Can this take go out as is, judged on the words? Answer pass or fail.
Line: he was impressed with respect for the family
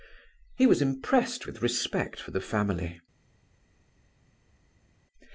pass